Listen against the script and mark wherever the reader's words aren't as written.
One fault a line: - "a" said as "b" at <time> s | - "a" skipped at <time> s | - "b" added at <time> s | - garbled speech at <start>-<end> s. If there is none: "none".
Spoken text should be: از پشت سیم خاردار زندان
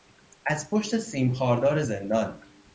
none